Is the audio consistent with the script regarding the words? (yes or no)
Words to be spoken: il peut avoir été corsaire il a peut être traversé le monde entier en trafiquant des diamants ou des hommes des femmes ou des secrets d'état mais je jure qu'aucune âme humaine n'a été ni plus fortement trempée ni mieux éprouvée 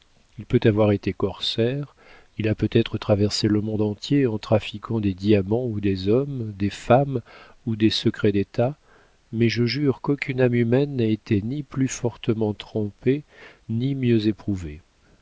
yes